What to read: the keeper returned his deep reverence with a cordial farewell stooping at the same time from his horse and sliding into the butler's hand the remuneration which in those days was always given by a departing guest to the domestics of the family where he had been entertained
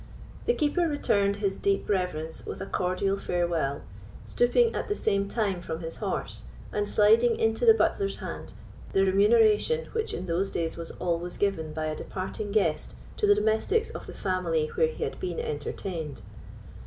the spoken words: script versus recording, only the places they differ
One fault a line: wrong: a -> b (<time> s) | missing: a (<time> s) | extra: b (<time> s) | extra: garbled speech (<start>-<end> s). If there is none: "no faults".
no faults